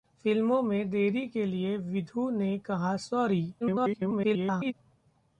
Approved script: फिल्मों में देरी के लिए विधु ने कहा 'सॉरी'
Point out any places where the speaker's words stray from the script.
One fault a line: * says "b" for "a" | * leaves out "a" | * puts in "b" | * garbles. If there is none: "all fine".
* garbles